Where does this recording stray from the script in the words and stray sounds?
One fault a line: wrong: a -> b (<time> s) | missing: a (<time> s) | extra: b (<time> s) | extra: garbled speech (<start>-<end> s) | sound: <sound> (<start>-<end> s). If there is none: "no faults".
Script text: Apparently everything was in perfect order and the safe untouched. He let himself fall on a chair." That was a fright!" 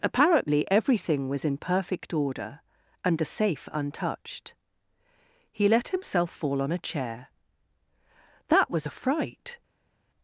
no faults